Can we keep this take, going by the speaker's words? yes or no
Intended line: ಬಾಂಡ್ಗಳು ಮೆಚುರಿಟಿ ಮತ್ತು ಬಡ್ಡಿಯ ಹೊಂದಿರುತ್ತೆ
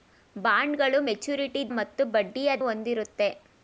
yes